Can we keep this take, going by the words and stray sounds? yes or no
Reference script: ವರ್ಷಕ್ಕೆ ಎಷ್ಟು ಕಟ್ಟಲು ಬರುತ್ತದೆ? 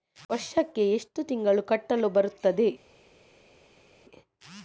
no